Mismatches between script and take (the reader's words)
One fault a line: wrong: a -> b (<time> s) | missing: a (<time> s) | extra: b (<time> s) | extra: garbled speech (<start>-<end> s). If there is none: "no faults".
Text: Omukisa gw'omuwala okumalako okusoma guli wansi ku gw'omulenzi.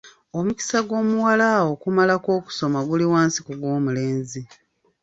no faults